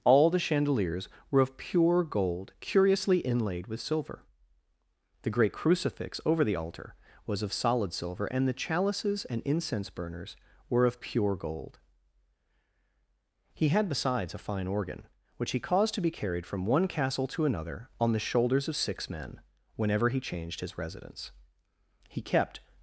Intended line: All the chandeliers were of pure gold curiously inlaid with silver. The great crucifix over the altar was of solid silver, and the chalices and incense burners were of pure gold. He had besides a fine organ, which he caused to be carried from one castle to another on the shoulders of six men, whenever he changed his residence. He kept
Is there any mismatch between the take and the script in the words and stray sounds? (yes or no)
no